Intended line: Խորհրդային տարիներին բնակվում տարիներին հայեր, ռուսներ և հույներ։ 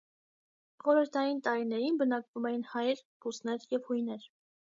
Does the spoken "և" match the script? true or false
true